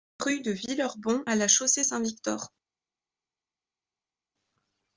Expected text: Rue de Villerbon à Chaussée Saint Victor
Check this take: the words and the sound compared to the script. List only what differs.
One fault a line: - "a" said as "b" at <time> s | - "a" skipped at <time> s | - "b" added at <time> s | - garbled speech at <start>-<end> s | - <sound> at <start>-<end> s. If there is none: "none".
- "La" added at 1.3 s